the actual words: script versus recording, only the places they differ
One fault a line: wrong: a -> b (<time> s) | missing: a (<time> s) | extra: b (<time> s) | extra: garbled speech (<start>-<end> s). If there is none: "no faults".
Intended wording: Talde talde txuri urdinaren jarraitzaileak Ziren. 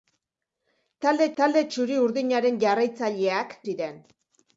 no faults